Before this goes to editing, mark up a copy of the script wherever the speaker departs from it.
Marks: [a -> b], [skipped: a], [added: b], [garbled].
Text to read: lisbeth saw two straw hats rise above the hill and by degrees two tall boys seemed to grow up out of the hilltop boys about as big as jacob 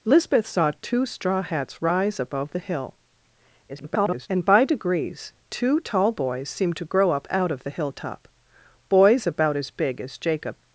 lisbeth saw two straw hats rise above the hill [garbled] and by degrees two tall boys seemed to grow up out of the hilltop boys about as big as jacob